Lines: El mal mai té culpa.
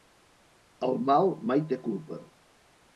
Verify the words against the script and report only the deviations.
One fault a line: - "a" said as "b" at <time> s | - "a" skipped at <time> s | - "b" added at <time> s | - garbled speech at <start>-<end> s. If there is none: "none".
none